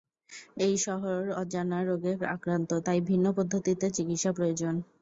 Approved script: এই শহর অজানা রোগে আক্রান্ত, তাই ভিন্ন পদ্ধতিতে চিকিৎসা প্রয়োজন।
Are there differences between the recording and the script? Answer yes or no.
no